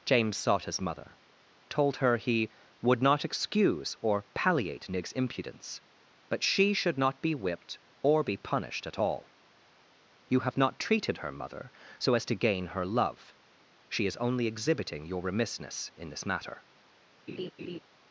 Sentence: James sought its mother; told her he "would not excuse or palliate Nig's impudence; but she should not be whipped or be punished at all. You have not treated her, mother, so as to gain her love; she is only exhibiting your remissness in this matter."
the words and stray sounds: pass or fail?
fail